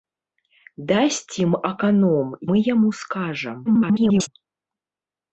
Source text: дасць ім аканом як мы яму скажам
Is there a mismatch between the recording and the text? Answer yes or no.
yes